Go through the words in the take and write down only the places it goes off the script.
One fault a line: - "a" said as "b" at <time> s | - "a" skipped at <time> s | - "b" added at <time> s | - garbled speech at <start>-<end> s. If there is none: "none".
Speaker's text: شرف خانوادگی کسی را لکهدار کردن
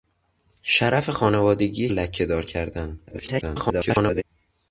- "کسی را" skipped at 1.9 s
- garbled speech at 3.1-4.2 s